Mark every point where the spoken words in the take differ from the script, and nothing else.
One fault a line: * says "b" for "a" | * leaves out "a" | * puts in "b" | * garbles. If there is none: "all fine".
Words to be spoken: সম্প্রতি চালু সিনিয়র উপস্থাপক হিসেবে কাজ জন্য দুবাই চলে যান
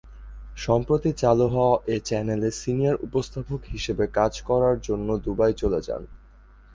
* puts in "হওয়া এ চ্যানেলে"
* puts in "করার"